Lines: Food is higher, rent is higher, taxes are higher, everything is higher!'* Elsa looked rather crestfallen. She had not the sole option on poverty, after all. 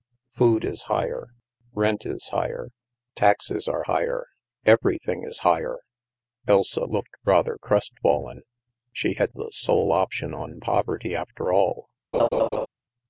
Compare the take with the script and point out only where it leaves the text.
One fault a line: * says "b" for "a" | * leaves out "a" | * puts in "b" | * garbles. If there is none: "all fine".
* leaves out "not"